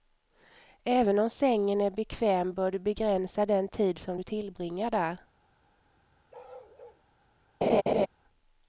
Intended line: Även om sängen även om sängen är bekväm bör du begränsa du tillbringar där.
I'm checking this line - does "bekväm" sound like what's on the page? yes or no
yes